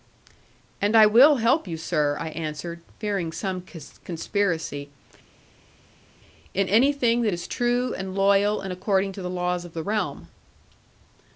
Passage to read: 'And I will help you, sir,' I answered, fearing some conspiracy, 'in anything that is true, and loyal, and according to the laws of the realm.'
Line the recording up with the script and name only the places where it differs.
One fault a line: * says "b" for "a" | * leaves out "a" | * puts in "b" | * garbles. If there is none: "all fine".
all fine